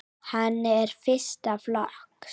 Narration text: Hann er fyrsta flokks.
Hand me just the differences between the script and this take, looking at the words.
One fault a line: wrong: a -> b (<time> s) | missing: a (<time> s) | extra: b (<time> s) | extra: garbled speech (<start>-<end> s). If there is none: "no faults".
no faults